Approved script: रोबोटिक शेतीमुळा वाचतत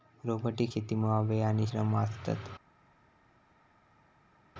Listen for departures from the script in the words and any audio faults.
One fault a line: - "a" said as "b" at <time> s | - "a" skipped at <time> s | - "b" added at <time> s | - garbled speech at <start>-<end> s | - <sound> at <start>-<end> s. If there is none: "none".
- "वेळ आणि श्रम" added at 1.2 s